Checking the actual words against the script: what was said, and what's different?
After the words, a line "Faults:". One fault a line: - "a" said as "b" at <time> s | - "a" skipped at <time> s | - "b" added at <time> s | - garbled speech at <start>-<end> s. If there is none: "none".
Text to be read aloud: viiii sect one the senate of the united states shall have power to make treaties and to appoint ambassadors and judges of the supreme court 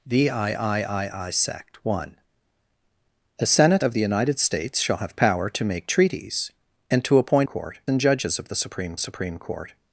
viiii sect one the senate of the united states shall have power to make treaties and to appoint court and judges of the supreme supreme court
Faults:
- "ambassadors" said as "court" at 7.4 s
- "supreme" added at 9.0 s